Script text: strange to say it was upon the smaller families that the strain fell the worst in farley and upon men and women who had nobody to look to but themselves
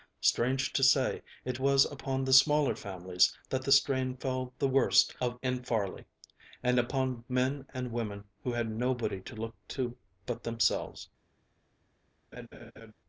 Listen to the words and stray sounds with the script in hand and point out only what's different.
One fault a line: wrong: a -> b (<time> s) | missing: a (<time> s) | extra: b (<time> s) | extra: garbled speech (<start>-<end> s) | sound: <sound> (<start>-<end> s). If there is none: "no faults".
sound: laugh (12.3-12.9 s)